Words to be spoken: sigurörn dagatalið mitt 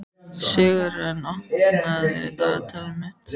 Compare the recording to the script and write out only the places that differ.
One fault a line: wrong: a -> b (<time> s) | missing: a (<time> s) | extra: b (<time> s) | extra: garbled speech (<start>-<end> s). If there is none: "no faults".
extra: opnaðu (1.3 s)